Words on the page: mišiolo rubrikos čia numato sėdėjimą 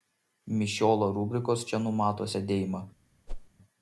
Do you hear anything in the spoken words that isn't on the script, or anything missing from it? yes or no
no